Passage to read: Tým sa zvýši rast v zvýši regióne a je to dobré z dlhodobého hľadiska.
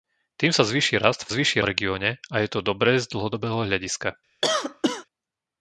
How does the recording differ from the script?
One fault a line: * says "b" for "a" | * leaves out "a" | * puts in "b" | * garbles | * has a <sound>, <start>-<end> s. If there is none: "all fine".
* has a cough, 4.4-5.1 s